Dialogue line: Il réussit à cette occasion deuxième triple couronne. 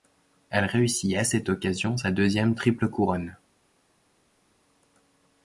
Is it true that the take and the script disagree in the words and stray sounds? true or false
true